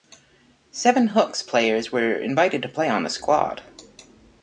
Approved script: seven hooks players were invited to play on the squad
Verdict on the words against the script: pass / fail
pass